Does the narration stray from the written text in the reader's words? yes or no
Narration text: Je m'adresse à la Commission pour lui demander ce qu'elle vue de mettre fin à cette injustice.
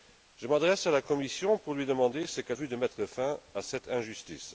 no